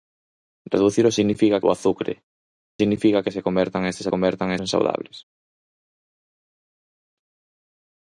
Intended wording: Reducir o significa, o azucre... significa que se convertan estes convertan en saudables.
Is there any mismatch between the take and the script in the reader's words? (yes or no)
no